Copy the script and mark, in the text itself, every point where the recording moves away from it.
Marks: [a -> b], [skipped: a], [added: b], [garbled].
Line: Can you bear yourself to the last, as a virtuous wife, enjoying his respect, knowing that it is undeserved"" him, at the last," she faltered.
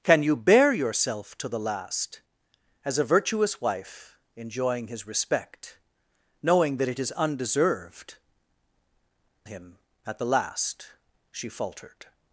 Can you bear yourself to the last, as a virtuous wife, enjoying his respect, knowing that it is undeserved"" him, at the last," she faltered.